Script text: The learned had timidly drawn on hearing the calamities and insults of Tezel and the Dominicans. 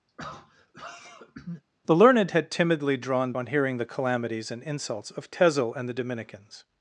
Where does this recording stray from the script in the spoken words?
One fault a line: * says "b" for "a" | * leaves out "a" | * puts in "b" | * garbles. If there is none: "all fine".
all fine